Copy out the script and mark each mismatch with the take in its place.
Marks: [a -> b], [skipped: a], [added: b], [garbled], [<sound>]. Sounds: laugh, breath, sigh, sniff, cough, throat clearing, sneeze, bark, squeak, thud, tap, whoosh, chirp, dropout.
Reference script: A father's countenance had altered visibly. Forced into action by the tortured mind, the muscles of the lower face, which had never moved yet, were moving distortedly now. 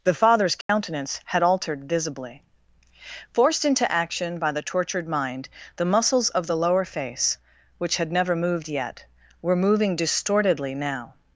[A -> The] father's countenance [dropout] had altered visibly. Forced into action by the tortured mind, the muscles of the lower face, which had never moved yet, were moving distortedly now.